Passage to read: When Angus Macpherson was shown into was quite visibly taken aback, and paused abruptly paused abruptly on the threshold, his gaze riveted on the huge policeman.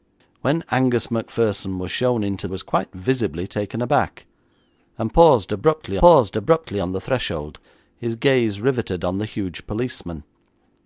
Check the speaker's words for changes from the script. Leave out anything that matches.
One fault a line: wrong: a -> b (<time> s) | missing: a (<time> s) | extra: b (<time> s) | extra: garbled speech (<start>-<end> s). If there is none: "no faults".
no faults